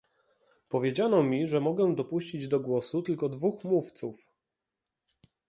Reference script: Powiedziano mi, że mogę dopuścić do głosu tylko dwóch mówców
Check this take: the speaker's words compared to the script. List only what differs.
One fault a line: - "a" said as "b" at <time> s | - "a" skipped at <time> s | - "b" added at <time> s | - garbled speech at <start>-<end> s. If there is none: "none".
none